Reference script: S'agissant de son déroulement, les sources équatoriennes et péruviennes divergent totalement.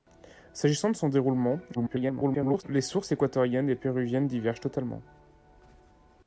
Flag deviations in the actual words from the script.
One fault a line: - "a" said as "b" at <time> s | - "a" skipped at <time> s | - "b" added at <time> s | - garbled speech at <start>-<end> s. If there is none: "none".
- garbled speech at 1.7-2.6 s